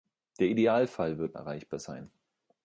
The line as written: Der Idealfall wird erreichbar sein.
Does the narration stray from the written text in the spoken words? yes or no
no